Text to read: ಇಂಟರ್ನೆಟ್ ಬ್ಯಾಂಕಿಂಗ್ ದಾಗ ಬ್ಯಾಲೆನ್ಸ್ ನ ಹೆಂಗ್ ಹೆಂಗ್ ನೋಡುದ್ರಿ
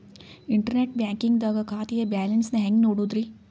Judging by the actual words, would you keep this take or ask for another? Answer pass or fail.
fail